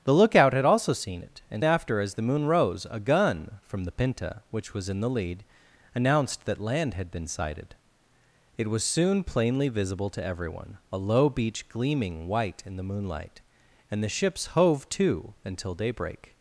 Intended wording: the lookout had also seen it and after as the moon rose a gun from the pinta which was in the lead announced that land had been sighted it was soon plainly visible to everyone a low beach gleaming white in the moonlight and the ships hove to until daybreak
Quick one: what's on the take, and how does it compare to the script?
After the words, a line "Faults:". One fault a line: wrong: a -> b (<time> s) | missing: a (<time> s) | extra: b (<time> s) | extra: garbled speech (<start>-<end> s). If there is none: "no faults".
the lookout had also seen it and after as the moon rose a gun from the pinta which was in the lead announced that land had been sighted it was soon plainly visible to everyone a low beach gleaming white in the moonlight and the ships hove to until daybreak
Faults:
no faults